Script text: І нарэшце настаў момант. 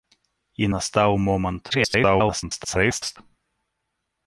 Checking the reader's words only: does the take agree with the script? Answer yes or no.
no